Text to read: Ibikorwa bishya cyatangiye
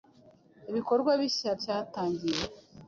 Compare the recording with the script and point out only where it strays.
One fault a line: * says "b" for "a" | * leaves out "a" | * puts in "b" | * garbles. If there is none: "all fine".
all fine